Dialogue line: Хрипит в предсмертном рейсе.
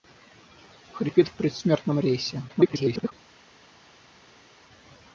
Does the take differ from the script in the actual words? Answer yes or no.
yes